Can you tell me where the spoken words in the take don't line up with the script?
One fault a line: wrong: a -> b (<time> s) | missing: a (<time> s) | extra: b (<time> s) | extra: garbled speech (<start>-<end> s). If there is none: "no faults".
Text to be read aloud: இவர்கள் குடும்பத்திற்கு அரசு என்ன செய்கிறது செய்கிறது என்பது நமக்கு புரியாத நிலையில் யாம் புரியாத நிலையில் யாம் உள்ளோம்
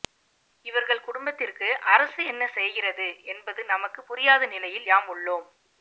missing: செய்கிறது (3.1 s)
missing: புரியாத நிலையில் யாம் (5.1 s)